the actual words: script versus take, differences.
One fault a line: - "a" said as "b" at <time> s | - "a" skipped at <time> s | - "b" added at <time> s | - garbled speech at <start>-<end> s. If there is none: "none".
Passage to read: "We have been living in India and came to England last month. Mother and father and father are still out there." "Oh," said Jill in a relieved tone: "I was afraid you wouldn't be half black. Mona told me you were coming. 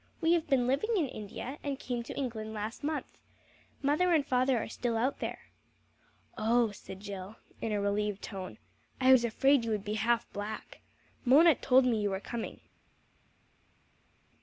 - "and father" skipped at 4.6 s
- "wouldn't" said as "would" at 9.7 s